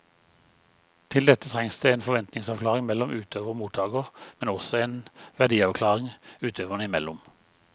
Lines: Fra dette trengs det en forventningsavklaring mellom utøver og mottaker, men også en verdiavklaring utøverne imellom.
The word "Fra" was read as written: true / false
false